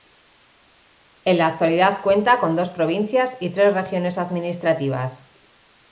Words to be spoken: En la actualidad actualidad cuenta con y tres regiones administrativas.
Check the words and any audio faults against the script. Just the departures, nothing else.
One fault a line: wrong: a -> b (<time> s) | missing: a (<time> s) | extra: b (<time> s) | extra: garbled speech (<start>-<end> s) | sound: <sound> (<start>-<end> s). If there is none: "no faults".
missing: actualidad (2.0 s)
extra: dos provincias (2.5 s)